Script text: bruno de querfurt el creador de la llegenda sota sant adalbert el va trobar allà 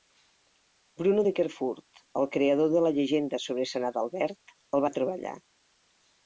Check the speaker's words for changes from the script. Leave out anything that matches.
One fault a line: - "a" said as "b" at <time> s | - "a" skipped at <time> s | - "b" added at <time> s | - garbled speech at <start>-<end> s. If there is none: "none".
- "sota" said as "sobre" at 3.5 s